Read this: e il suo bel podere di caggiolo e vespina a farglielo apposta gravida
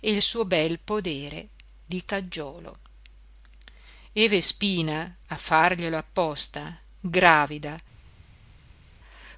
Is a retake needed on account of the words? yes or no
no